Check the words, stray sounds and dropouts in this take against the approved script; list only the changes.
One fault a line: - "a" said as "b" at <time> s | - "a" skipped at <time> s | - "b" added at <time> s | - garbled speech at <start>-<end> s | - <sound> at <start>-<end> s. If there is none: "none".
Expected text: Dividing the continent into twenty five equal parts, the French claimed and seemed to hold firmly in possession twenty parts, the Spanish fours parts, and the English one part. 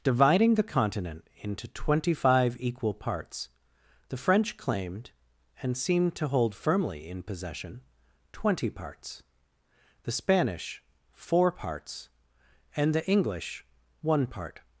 - "fours" said as "four" at 11.1 s